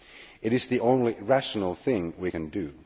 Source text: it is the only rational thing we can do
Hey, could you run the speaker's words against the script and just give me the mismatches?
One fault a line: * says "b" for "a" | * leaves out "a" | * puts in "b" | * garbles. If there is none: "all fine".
all fine